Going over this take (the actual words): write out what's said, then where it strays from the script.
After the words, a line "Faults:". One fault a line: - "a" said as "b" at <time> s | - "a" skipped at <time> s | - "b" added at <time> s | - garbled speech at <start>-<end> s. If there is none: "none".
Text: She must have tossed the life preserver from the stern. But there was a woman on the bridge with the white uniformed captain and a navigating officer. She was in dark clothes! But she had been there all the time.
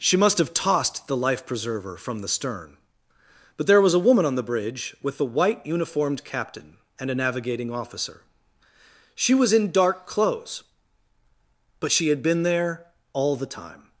She must have tossed the life preserver from the stern. But there was a woman on the bridge with the white uniformed captain and a navigating officer. She was in dark clothes! But she had been there all the time.
Faults:
none